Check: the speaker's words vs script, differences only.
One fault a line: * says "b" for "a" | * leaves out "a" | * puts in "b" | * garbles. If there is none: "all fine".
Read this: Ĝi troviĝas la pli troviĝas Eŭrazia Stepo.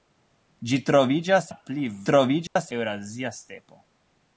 all fine